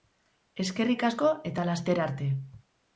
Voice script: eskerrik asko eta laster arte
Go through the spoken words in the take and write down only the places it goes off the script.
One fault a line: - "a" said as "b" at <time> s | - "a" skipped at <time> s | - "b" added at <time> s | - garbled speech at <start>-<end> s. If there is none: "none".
none